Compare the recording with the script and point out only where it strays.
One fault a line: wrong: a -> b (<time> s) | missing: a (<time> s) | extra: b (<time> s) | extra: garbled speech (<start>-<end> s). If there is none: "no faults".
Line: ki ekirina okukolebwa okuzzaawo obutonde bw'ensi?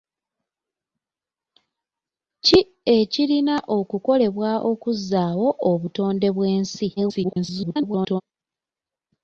extra: garbled speech (7.0-8.2 s)